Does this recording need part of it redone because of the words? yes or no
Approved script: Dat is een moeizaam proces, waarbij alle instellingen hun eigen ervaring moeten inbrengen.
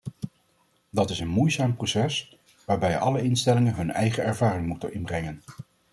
no